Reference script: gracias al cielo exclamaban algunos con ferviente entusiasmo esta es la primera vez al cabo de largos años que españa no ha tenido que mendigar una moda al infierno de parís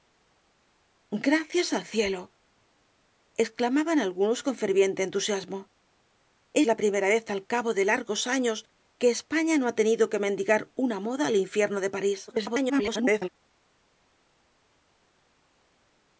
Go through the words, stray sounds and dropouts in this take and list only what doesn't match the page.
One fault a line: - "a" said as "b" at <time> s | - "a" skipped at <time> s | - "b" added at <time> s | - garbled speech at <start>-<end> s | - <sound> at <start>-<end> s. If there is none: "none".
- "esta es" skipped at 5.6 s
- garbled speech at 12.3-13.3 s